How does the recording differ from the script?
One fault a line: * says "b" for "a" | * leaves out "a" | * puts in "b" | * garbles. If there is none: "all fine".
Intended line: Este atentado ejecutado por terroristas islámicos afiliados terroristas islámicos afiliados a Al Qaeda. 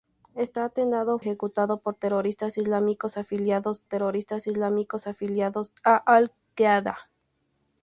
all fine